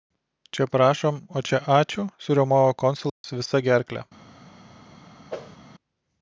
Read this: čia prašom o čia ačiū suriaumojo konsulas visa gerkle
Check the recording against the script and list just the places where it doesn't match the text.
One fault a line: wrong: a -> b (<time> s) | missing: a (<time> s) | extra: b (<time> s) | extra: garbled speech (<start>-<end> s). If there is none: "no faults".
no faults